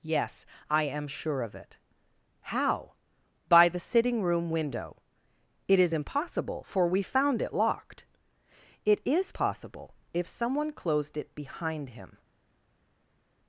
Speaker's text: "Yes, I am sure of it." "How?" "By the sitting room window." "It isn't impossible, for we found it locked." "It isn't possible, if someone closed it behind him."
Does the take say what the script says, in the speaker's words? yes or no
no